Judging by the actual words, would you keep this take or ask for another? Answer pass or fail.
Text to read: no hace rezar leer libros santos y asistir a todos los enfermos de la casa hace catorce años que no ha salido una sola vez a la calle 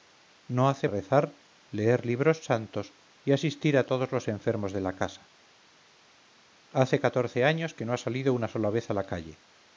pass